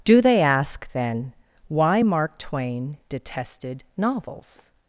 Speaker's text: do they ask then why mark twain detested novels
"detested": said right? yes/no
yes